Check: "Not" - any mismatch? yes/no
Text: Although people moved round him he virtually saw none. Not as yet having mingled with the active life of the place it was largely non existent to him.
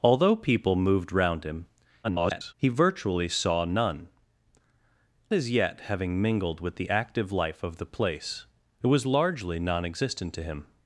yes